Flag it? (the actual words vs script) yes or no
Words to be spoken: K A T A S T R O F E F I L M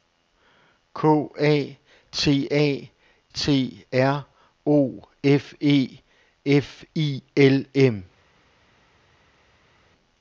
yes